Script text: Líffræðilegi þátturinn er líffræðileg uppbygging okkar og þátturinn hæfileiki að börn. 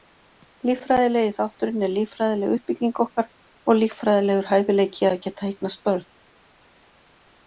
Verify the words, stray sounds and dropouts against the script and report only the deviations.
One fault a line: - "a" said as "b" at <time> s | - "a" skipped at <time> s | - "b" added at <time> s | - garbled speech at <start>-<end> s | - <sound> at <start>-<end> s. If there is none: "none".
- "þátturinn" said as "líffræðilegur" at 3.8 s
- "geta eignast" added at 5.3 s